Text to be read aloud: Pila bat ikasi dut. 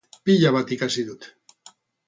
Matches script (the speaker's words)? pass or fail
pass